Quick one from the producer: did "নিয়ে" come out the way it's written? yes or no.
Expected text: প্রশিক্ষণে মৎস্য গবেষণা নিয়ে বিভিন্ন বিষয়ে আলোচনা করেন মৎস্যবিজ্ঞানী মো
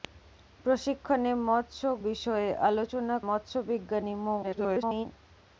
no